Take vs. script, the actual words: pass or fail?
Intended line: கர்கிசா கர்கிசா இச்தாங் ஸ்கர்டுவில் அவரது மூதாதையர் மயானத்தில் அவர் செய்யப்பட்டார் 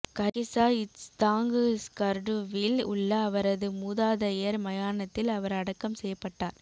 fail